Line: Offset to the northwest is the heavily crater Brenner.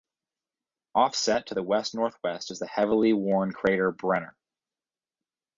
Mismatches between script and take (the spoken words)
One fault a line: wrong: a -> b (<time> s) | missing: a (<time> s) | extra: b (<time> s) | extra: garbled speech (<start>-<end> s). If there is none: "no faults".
extra: west (1.6 s)
extra: worn (3.1 s)